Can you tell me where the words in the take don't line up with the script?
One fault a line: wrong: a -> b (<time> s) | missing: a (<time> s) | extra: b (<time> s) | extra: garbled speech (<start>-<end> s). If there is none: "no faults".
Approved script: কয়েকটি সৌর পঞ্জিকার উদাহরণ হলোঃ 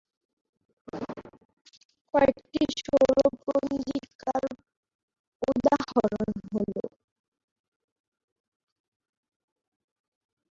no faults